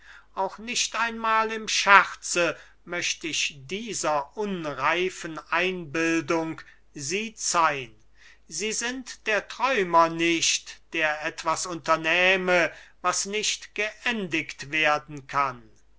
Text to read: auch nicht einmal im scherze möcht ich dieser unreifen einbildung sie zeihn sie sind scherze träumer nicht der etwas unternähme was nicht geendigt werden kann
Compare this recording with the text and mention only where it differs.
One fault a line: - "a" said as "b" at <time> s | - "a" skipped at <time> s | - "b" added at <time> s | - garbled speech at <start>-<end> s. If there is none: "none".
- "scherze" said as "der" at 9.3 s